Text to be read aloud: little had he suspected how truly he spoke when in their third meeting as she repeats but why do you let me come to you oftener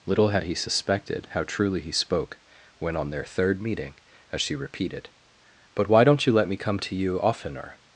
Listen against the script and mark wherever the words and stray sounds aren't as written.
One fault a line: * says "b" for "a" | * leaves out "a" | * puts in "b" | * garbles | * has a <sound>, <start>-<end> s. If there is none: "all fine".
* says "on" for "in"
* says "repeated" for "repeats"
* says "don't" for "do"